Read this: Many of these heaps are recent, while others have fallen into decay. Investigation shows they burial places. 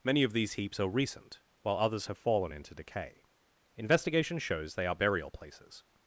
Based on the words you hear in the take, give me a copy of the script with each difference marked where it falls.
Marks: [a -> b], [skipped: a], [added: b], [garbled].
Many of these heaps are recent, while others have fallen into decay. Investigation shows they [added: are] burial places.